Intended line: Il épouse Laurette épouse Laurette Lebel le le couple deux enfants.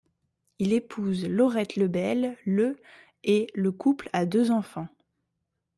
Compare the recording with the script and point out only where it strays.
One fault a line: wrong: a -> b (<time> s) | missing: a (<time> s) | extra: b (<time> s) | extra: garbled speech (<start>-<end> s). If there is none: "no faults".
missing: épouse Laurette (1.8 s)
extra: et (3.2 s)
extra: a (4.1 s)